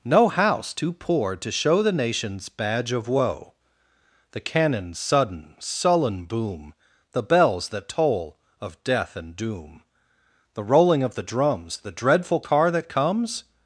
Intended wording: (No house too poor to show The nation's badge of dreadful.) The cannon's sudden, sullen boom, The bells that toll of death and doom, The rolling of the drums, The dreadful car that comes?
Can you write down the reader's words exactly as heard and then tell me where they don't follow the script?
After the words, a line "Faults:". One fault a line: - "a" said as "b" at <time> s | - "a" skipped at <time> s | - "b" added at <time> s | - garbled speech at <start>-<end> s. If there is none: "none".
(No house too poor to show The nation's badge of woe.) The cannon's sudden, sullen boom, The bells that toll of death and doom, The rolling of the drums, The dreadful car that comes?
Faults:
- "dreadful" said as "woe" at 3.1 s